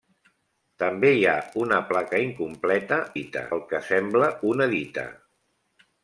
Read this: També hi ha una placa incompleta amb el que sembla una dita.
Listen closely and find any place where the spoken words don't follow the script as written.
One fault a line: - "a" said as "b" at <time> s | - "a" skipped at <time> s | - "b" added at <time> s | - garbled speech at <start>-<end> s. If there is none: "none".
- "amb" said as "dita" at 3.1 s